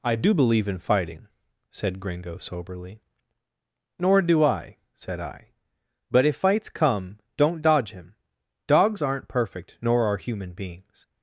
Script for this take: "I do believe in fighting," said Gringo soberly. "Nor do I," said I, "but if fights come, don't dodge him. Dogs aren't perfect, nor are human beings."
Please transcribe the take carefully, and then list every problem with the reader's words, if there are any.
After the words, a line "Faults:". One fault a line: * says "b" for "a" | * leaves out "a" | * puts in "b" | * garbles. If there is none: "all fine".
"I do believe in fighting," said Gringo soberly. "Nor do I," said I, "but if fights come, don't dodge him. Dogs aren't perfect, nor are human beings."
Faults:
all fine